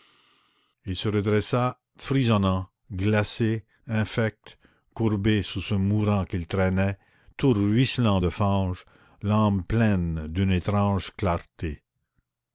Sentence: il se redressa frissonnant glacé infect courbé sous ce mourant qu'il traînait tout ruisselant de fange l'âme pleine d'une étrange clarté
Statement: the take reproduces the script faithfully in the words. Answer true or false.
true